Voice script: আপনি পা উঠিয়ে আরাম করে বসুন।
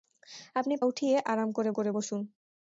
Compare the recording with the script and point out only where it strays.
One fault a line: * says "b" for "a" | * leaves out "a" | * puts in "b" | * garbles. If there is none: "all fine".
* leaves out "পা"
* puts in "করে"